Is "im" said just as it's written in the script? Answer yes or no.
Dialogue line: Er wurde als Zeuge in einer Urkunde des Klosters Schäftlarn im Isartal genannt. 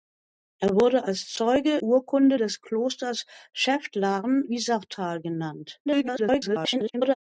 no